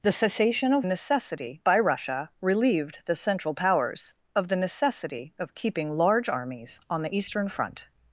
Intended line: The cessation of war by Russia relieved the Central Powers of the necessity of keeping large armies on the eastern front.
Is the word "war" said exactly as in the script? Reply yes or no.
no